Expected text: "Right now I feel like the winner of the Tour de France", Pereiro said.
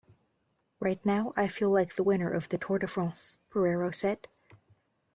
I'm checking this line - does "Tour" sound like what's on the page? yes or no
yes